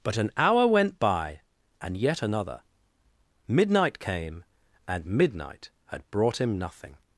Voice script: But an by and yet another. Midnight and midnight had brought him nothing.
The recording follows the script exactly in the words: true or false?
false